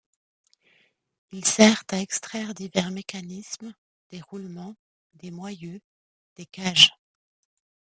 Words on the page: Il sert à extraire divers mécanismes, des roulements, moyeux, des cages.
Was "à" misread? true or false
false